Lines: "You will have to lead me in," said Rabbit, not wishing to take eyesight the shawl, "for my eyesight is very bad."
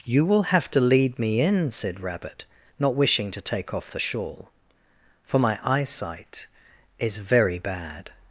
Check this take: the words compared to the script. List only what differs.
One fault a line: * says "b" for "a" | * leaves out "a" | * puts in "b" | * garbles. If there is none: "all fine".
* says "off" for "eyesight"